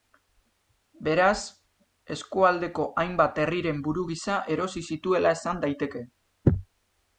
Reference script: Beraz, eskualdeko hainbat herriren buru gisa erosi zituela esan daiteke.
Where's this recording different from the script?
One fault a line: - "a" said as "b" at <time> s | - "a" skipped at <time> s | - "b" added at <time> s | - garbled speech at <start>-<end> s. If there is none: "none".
none